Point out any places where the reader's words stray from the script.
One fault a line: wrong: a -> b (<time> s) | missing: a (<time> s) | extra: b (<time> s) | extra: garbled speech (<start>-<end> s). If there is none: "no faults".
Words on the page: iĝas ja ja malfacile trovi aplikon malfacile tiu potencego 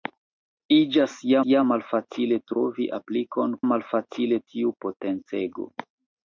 no faults